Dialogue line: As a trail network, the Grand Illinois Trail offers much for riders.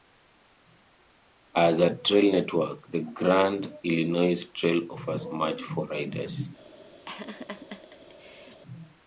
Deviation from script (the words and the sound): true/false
true